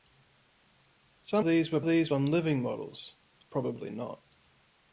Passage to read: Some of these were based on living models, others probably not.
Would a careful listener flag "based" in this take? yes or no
yes